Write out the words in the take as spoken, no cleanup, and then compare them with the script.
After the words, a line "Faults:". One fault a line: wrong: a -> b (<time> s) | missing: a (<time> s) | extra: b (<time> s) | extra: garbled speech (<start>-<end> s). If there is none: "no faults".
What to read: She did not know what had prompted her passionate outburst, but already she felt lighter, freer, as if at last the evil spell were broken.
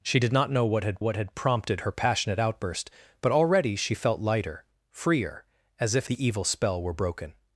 She did not know what had what had prompted her passionate outburst, but already she felt lighter, freer, as if the evil spell were broken.
Faults:
extra: what had (1.0 s)
missing: at last (6.1 s)